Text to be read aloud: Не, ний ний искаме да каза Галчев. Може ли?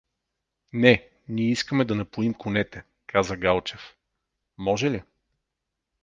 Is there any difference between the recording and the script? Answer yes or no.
yes